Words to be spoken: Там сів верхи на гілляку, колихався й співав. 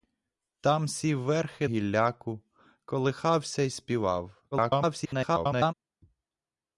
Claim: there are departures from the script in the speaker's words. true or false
true